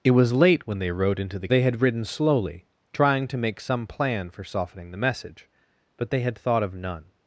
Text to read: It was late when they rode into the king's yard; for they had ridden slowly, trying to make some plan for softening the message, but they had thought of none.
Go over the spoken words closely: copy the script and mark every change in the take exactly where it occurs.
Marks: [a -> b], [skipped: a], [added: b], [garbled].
It was late when they rode into the [skipped: king's yard; for] they had ridden slowly, trying to make some plan for softening the message, but they had thought of none.